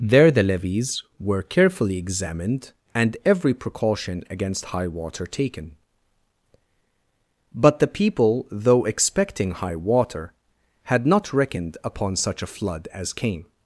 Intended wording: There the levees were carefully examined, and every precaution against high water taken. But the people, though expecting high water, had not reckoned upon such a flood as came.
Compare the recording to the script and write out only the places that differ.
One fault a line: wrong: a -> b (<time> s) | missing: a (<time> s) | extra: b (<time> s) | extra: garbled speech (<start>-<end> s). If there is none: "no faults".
no faults